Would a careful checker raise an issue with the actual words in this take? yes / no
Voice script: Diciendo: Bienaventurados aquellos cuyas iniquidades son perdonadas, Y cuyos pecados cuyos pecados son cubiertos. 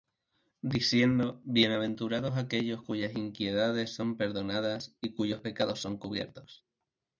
yes